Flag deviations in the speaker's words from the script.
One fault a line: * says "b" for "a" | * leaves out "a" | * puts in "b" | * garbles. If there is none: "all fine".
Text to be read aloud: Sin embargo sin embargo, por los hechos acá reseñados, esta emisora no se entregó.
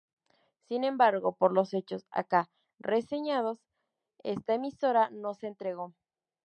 * leaves out "sin embargo"